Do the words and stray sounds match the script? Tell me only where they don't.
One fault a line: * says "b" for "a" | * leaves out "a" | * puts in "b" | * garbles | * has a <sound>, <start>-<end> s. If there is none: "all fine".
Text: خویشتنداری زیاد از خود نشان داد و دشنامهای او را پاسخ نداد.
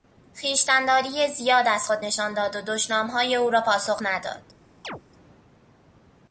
* has a chirp, 4.8-5.0 s